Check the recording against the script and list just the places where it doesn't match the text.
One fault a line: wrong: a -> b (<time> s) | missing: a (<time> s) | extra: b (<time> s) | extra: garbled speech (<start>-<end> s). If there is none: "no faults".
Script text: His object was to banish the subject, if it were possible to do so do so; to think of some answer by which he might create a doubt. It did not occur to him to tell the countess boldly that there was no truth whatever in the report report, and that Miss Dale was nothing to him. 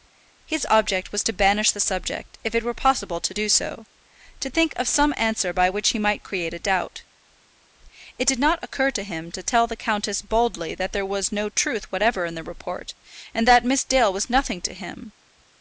missing: do so (3.8 s)
missing: report (12.9 s)